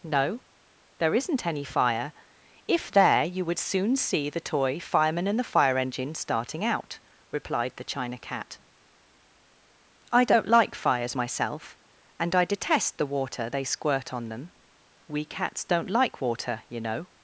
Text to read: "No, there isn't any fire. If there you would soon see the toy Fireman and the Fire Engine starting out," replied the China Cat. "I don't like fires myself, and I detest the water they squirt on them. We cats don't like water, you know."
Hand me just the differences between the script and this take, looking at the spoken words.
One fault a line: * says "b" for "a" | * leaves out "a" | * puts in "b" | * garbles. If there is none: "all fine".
all fine